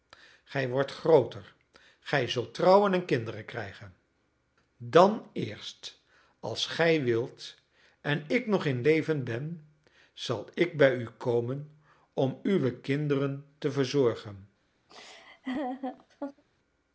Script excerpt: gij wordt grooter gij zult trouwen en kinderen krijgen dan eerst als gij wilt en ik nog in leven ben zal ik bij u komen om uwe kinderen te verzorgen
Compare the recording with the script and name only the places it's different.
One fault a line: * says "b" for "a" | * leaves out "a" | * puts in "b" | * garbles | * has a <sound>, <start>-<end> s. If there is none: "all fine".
* has a laugh, 14.9-16.4 s